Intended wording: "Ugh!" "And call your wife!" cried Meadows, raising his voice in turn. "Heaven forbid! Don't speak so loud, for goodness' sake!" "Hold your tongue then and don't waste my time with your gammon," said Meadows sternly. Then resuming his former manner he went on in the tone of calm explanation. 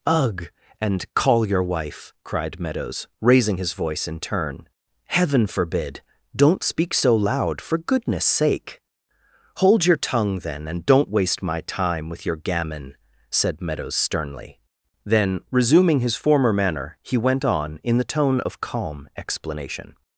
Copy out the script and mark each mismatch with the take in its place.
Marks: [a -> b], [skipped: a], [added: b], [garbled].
"Ugh!" "And call your wife!" cried Meadows, raising his voice in turn. "Heaven forbid! Don't speak so loud, for goodness' sake!" "Hold your tongue then and don't waste my time with your gammon," said Meadows sternly. Then resuming his former manner he went on in the tone of calm explanation.